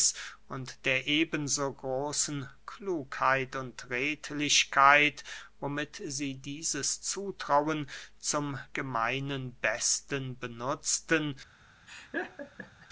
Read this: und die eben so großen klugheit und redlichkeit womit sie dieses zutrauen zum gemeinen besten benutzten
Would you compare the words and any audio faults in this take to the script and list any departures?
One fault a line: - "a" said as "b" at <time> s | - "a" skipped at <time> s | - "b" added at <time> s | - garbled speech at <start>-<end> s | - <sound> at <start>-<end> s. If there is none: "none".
- "die" said as "der" at 0.8 s
- laugh at 11.9-12.9 s